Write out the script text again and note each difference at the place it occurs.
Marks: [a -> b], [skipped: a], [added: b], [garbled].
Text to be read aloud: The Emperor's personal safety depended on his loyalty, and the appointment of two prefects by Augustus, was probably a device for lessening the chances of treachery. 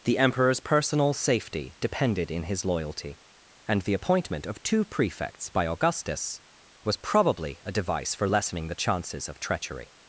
The Emperor's personal safety depended [on -> in] his loyalty, and the appointment of two prefects by Augustus, was probably a device for lessening the chances of treachery.